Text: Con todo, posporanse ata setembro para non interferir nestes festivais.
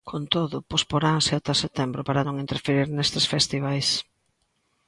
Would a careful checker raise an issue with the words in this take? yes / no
no